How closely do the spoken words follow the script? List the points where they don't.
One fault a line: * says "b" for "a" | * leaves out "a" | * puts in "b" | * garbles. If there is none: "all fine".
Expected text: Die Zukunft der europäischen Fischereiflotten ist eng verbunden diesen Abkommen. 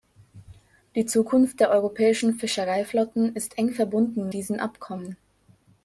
all fine